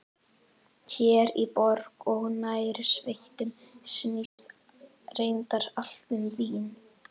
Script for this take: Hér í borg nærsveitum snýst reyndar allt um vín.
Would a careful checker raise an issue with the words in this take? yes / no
yes